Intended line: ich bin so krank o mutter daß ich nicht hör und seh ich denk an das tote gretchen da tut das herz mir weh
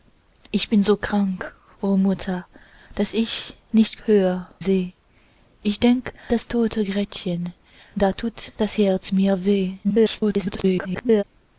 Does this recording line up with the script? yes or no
no